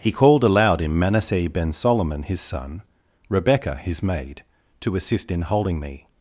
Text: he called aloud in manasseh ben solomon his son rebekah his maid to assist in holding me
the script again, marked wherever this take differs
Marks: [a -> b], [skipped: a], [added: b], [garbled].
he called aloud in manasseh ben solomon his son rebekah his maid to assist in holding me